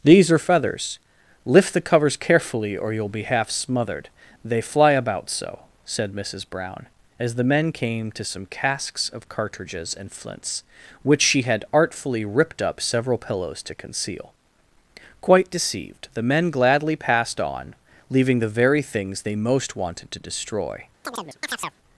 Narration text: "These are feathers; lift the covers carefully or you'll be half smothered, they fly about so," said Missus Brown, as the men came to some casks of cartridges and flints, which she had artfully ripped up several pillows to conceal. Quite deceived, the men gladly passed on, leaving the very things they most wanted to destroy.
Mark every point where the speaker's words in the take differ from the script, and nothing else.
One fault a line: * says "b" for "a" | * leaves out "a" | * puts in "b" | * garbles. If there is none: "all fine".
all fine